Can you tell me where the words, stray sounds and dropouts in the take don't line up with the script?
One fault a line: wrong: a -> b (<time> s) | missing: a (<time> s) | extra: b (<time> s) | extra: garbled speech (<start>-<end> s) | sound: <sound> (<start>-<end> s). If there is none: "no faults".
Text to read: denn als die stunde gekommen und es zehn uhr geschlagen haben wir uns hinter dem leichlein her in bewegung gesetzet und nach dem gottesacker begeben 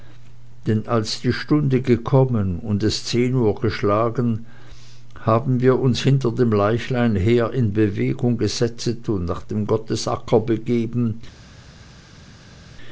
no faults